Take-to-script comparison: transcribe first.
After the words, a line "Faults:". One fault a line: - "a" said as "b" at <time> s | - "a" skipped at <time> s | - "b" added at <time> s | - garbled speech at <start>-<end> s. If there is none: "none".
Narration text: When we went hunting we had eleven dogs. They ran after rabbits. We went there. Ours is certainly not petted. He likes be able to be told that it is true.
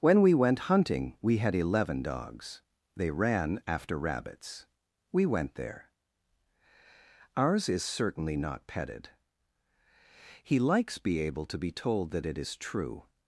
When we went hunting we had eleven dogs. They ran after rabbits. We went there. Ours is certainly not petted. He likes be able to be told that it is true.
Faults:
none